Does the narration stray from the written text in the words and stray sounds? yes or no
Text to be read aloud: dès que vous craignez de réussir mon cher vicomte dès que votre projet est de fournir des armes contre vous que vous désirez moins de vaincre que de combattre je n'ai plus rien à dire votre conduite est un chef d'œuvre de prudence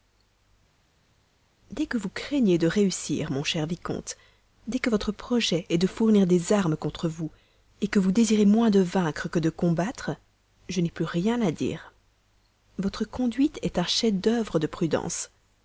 no